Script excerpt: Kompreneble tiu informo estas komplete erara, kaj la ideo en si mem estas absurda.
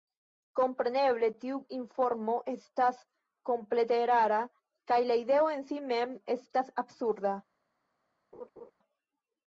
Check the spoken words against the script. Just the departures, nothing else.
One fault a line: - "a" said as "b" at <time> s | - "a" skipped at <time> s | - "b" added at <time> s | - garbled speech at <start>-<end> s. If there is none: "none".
none